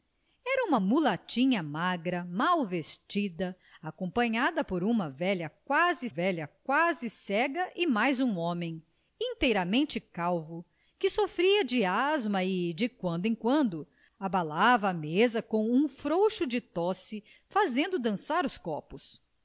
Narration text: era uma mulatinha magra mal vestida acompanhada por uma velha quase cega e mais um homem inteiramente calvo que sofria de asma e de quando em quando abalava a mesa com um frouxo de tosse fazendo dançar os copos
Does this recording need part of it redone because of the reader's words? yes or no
yes